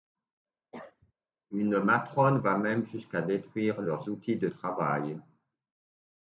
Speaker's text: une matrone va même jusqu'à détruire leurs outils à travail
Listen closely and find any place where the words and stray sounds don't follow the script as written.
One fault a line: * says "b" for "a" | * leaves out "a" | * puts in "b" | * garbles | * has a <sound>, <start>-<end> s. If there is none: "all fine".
* has a cough, 0.7-1.1 s
* says "de" for "à"